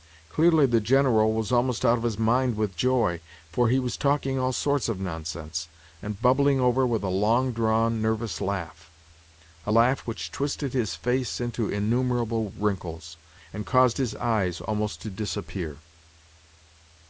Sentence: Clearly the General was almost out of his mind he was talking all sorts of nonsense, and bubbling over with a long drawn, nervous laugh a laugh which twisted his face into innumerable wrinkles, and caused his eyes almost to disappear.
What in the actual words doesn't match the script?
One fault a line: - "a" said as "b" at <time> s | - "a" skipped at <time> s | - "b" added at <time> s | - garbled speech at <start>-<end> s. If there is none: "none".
- "with joy for" added at 2.5 s